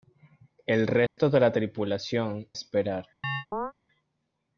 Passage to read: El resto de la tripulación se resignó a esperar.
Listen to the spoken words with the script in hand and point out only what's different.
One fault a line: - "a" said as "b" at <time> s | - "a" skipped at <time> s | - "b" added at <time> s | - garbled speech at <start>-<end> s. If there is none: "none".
- "se resignó a" skipped at 2.5 s